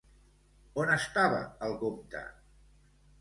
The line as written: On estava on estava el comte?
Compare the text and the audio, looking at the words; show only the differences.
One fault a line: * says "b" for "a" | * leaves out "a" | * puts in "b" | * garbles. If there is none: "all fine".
* leaves out "on estava"